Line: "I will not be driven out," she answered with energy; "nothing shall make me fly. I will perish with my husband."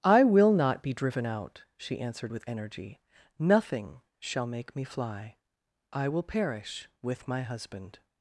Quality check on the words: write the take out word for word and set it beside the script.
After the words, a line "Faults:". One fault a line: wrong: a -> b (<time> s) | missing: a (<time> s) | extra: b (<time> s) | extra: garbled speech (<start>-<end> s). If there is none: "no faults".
"I will not be driven out," she answered with energy; "nothing shall make me fly. I will perish with my husband."
Faults:
no faults